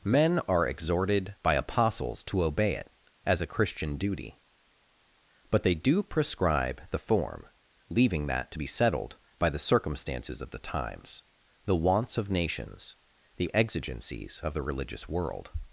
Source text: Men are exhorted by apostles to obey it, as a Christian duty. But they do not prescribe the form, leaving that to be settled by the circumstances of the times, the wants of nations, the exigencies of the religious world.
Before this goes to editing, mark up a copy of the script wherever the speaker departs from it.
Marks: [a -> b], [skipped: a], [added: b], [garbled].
Men are exhorted by apostles to obey it, as a Christian duty. But they do [skipped: not] prescribe the form, leaving that to be settled by the circumstances of the times, the wants of nations, the exigencies of the religious world.